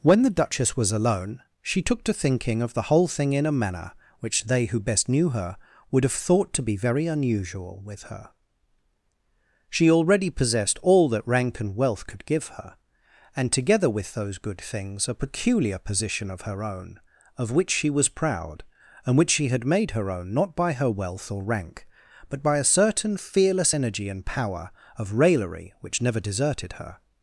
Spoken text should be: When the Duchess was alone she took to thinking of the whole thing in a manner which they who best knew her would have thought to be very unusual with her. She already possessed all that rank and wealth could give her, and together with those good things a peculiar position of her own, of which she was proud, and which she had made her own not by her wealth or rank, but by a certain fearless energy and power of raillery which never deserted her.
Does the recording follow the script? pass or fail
pass